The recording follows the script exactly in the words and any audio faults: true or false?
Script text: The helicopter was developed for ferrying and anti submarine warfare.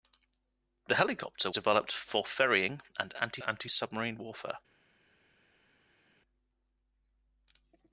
false